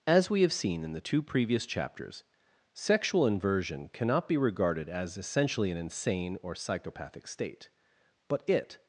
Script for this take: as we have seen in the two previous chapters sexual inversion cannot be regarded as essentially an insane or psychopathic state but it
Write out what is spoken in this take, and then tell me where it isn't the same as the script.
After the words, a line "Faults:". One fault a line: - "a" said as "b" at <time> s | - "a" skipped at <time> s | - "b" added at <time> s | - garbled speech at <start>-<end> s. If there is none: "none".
as we have seen in the two previous chapters sexual inversion cannot be regarded as essentially an insane or psychopathic state but it
Faults:
none